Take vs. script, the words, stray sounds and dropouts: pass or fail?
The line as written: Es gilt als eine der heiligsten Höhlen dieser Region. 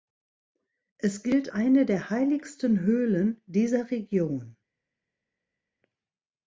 fail